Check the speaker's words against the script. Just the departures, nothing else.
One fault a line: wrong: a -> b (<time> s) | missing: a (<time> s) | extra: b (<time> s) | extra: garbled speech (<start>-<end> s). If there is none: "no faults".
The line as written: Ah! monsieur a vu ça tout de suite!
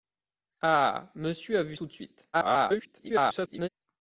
missing: ça (1.8 s)
extra: garbled speech (2.3-3.7 s)